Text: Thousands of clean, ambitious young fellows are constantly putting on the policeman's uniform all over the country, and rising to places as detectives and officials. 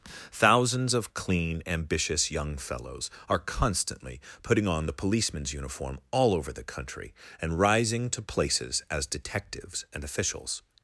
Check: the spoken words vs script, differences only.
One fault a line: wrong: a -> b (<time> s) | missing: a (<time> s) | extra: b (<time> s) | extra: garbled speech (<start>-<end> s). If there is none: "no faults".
no faults